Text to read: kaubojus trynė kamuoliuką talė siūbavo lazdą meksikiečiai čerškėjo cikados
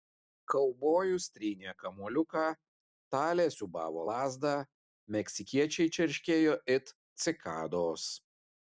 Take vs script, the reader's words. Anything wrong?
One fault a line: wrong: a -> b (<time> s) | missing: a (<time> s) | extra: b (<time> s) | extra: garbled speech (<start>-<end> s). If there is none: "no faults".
extra: it (6.8 s)